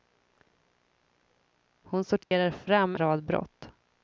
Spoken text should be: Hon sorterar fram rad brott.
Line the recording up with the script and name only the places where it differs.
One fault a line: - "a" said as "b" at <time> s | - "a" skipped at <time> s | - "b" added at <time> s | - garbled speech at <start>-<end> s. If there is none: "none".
none